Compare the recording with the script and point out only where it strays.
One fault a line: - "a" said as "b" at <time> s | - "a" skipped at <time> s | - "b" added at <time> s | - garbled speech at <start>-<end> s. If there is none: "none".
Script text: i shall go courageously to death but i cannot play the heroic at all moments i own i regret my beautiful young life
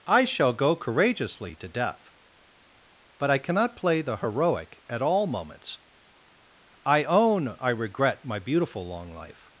- "young" said as "long" at 8.9 s